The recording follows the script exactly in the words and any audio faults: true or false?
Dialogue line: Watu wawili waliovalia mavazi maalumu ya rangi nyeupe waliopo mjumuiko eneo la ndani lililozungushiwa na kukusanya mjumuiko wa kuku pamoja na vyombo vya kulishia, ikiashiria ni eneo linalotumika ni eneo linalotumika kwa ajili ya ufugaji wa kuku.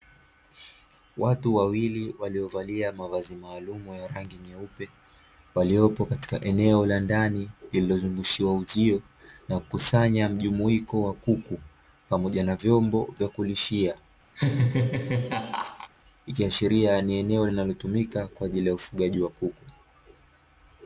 false